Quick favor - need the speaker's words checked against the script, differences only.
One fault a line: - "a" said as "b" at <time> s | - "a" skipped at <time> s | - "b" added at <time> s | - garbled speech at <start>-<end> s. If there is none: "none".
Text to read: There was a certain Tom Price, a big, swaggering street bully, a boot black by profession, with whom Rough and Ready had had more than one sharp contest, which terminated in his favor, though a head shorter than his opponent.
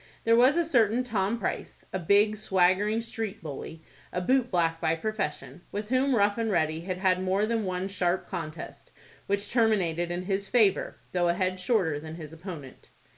none